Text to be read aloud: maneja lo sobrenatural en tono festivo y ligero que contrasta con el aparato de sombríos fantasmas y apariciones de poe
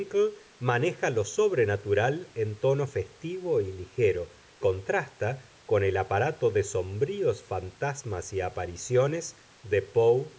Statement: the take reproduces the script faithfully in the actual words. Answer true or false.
false